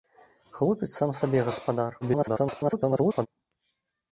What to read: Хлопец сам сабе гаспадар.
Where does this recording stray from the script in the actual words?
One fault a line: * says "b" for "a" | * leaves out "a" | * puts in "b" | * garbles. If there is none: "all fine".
* garbles